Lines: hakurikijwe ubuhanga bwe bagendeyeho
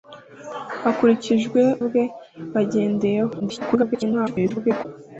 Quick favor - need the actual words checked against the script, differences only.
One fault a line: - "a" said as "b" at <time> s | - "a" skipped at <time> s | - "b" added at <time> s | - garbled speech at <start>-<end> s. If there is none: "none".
- "ubuhanga" skipped at 1.6 s
- garbled speech at 3.4-4.9 s